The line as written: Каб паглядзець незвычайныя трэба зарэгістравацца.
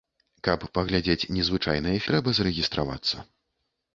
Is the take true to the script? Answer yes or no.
yes